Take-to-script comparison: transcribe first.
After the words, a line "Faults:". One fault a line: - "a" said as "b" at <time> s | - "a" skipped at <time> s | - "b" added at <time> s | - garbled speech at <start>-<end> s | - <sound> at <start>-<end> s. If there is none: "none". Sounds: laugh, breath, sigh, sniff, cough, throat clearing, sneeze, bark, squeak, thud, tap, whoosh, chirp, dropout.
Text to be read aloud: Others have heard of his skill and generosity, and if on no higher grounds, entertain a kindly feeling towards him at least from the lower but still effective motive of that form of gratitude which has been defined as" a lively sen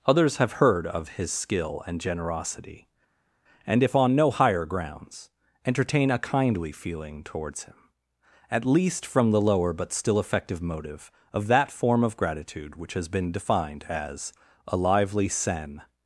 Others have heard of his skill and generosity, and if on no higher grounds, entertain a kindly feeling towards him at least from the lower but still effective motive of that form of gratitude which has been defined as" a lively sen
Faults:
none